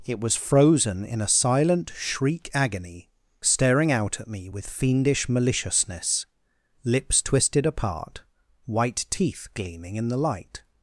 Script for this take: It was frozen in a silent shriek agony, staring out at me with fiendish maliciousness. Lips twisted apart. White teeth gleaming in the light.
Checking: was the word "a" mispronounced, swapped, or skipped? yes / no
no